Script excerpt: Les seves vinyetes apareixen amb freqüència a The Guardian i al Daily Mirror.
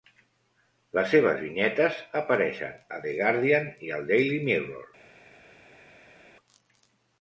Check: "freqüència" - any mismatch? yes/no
yes